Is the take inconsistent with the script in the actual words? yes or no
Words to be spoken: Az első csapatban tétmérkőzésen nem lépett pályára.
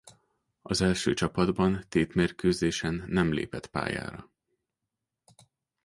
no